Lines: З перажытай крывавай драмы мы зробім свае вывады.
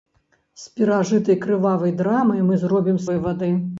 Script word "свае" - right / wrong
wrong